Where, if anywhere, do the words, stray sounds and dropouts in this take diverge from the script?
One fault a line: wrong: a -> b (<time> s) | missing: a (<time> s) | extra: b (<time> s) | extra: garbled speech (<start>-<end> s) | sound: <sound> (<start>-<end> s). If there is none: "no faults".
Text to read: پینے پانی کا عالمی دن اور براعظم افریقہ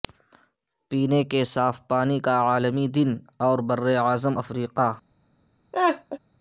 extra: کے صاف (1.2 s)
sound: laugh (5.7-6.2 s)